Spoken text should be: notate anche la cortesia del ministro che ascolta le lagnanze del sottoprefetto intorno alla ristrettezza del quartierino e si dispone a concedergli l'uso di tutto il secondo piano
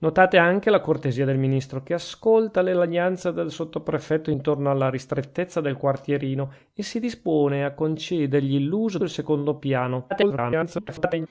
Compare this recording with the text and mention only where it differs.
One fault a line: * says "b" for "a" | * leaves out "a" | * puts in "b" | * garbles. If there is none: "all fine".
* leaves out "di tutto"
* garbles